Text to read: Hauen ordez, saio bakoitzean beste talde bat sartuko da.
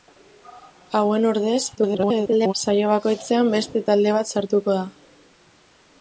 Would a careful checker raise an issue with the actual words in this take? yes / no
yes